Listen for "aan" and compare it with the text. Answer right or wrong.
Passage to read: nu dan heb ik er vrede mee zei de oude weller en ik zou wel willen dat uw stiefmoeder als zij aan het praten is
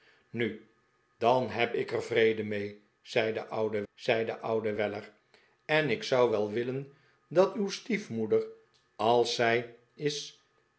wrong